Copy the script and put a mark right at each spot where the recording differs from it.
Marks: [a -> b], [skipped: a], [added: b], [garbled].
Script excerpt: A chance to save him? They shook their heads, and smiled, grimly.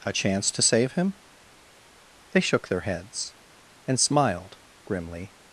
A chance to save him? They shook their heads, and smiled, grimly.